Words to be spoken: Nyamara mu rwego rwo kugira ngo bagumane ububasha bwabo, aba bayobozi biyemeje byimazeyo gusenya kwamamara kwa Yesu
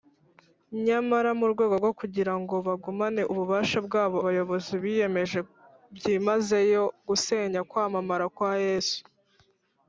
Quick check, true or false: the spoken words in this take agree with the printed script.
false